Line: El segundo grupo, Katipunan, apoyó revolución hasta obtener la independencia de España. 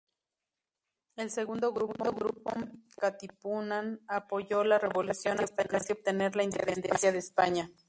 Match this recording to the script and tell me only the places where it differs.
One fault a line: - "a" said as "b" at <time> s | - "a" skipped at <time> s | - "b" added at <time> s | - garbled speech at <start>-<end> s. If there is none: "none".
- "la" added at 4.6 s
- "casi" added at 5.6 s